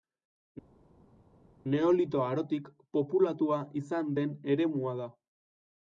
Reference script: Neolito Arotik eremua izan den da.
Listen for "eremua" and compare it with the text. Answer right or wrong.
wrong